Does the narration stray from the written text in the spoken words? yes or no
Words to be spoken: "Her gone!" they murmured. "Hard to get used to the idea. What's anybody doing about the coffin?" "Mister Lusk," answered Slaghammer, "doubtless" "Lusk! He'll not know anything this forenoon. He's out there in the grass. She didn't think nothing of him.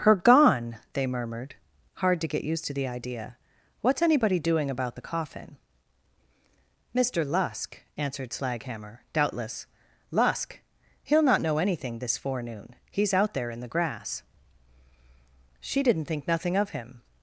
no